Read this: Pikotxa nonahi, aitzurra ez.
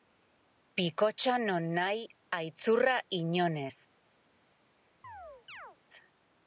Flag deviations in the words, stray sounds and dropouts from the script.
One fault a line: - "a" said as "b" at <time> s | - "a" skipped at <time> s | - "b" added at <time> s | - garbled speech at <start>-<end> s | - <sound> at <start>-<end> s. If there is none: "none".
- "inon" added at 3.2 s
- chirp at 5.0-5.8 s